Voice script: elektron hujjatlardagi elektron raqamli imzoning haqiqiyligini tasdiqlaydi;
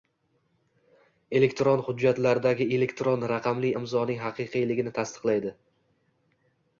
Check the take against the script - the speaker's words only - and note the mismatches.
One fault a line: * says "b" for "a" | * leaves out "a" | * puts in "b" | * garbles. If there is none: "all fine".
all fine